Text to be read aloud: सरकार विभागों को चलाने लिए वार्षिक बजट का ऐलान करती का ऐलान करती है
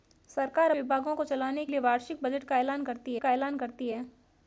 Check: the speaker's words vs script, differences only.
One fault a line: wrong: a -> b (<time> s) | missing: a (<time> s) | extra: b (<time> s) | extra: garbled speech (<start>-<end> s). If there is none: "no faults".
no faults